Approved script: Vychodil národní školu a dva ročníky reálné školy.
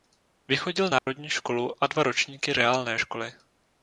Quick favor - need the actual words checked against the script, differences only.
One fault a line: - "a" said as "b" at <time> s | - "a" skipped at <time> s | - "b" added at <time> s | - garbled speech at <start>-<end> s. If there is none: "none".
none